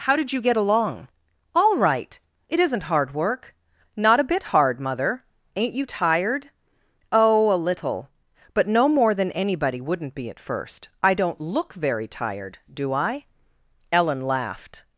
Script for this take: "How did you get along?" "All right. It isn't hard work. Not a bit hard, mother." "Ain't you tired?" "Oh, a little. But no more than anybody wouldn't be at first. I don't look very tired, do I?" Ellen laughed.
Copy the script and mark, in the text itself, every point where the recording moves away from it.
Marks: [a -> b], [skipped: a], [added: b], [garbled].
"How did you get along?" "All right. It isn't hard work. Not a bit hard, mother." "Ain't you tired?" "Oh, a little. But no more than anybody wouldn't be at first. I don't look very tired, do I?" Ellen laughed.